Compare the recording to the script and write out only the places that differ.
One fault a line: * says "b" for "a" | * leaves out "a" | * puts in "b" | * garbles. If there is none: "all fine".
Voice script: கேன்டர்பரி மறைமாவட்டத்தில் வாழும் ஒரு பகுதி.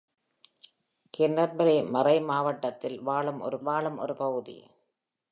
* puts in "வாழும் ஒரு"